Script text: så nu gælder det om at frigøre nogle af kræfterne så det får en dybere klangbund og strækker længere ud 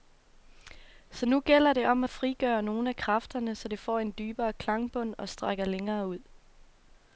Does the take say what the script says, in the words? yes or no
yes